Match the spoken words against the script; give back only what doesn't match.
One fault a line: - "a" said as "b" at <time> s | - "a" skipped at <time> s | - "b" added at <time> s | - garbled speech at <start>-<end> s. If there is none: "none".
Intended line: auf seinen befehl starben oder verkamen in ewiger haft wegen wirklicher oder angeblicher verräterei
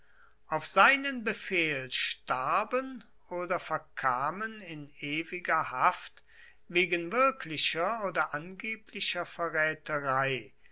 none